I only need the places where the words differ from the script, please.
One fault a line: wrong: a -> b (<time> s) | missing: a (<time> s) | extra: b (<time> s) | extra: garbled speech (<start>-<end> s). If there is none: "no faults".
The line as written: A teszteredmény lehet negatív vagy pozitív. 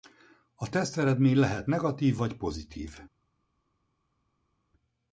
no faults